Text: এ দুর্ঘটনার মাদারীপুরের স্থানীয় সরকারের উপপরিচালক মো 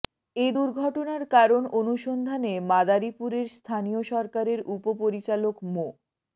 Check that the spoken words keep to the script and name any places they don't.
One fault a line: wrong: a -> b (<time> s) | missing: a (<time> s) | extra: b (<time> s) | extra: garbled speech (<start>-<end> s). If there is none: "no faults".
extra: কারণ অনুসন্ধানে (1.3 s)